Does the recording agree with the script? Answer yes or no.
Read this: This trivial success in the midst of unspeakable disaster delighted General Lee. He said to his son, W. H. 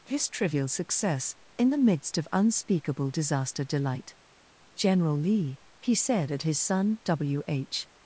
no